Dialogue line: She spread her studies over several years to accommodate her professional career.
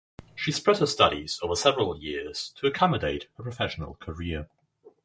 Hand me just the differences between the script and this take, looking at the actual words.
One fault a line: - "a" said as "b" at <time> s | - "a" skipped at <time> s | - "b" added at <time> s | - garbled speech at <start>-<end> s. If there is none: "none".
none